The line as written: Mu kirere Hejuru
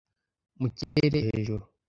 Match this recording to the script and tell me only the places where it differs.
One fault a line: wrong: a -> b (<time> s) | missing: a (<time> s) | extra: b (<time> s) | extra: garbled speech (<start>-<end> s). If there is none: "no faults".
no faults